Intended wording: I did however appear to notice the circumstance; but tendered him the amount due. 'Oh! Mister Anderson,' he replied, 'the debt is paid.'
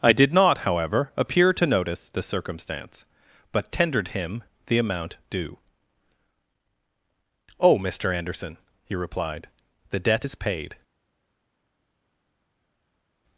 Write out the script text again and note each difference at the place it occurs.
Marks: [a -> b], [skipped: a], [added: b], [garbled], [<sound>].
I did [added: not] however appear to notice the circumstance; but tendered him the amount due. 'Oh! Mister Anderson,' he replied, 'the debt is paid.'